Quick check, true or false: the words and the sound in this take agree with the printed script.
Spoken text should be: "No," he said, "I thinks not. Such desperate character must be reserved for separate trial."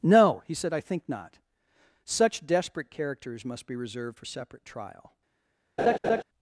false